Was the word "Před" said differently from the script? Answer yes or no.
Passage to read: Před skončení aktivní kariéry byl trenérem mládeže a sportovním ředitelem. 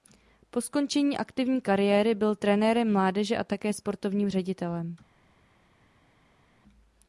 yes